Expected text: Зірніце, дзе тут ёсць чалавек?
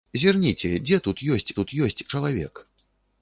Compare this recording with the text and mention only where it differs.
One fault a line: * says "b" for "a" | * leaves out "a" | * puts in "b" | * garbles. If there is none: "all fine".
* puts in "тут ёсць"